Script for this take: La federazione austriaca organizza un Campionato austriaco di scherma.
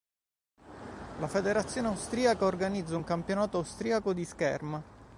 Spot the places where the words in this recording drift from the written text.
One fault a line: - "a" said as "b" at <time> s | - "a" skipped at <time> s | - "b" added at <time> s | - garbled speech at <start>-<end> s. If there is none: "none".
none